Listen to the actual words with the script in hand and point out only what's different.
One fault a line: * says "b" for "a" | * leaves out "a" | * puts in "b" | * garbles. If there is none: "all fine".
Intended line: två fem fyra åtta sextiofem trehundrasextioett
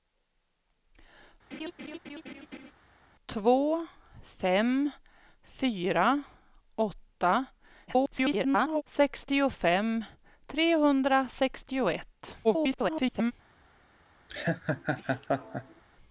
* garbles
* garbles